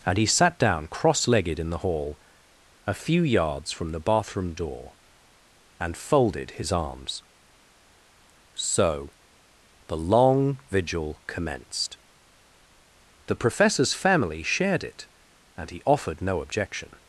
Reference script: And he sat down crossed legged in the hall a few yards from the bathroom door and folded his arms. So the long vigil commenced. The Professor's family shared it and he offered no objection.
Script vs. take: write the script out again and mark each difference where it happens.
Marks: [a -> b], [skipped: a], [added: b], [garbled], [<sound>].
And he sat down [crossed -> cross] legged in the hall a few yards from the bathroom door and folded his arms. So the long vigil commenced. The Professor's family shared it and he offered no objection.